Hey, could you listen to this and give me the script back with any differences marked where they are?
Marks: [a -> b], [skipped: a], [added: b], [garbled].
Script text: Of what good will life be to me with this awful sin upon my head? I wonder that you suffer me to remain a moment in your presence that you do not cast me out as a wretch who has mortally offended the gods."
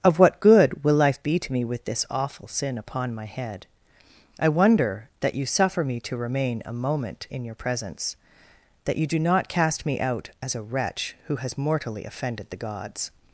Of what good will life be to me with this awful sin upon my head? I wonder that you suffer me to remain a moment in your presence that you do not cast me out as a wretch who has mortally offended the gods."